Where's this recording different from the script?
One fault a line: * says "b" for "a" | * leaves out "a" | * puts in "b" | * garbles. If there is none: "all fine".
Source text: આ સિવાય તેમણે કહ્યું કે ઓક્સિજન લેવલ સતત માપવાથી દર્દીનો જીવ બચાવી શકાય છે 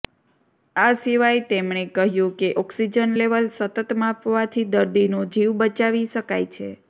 all fine